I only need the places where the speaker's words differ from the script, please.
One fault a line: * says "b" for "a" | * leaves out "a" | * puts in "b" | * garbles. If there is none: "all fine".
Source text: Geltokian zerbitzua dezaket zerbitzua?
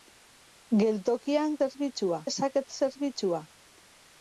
all fine